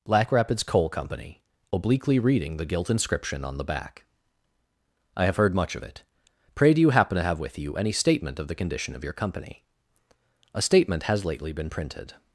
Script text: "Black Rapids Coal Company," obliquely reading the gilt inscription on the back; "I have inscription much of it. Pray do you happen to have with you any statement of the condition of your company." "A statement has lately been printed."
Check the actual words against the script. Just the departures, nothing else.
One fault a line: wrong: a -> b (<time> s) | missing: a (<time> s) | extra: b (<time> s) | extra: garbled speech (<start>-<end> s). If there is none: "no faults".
wrong: inscription -> heard (5.3 s)